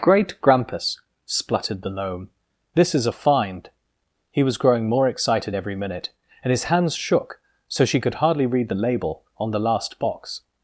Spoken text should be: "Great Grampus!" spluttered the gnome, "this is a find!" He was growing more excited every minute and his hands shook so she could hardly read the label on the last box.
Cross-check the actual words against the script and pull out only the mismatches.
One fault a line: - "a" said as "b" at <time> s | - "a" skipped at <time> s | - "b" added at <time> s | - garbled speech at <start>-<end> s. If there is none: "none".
none